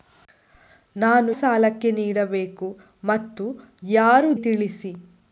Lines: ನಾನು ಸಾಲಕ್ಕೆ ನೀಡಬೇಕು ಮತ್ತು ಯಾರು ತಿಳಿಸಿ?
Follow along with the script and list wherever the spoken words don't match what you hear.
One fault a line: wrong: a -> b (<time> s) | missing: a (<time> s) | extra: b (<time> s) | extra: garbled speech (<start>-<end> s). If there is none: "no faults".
no faults